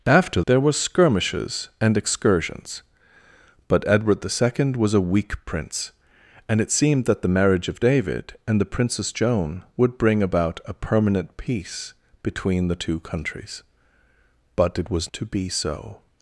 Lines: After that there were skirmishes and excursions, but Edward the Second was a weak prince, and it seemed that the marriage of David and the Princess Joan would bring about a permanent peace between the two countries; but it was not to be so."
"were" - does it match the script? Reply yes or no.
yes